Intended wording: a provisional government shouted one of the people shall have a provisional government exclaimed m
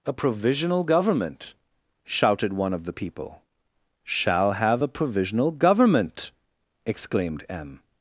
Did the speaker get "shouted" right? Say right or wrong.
right